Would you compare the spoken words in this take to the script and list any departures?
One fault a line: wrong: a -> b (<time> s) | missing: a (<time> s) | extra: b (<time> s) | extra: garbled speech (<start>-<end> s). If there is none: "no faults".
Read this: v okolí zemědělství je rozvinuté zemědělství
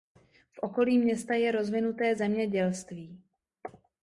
wrong: zemědělství -> města (1.0 s)